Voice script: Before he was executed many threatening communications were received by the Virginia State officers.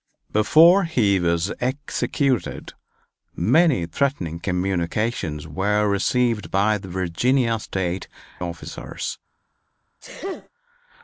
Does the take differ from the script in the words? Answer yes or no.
no